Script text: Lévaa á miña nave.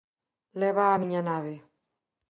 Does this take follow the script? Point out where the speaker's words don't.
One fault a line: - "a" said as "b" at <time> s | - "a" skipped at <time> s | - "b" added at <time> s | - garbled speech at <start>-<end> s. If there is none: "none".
none